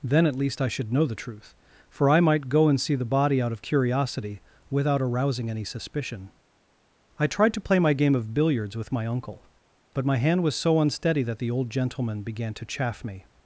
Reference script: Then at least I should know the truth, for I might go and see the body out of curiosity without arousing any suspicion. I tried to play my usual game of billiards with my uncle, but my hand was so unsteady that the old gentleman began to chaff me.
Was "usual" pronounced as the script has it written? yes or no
no